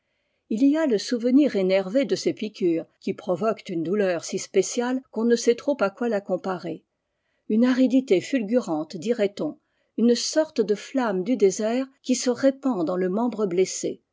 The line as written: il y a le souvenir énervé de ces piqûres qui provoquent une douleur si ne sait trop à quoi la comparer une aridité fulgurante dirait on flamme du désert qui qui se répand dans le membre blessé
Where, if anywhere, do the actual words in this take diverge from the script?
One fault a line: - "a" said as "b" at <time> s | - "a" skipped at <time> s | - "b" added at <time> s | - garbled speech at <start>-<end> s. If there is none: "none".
- "spéciale qu'on" added at 4.4 s
- "une sorte de" added at 10.0 s
- "qui" skipped at 12.2 s